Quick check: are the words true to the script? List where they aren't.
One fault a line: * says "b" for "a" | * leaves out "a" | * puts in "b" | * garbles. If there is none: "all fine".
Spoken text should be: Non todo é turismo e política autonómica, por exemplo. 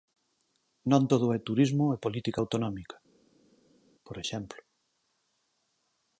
all fine